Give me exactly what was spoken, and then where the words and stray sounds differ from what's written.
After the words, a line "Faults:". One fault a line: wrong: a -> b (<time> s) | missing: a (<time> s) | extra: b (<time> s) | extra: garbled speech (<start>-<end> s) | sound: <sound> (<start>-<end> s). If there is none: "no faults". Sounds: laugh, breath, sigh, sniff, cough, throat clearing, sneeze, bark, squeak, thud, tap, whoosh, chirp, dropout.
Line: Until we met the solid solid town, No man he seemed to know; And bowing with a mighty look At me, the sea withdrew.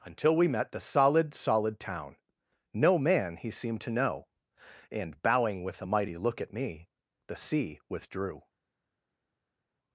Until we met the solid solid town, No man he seemed to know; And bowing with a mighty look At me, the sea withdrew.
Faults:
no faults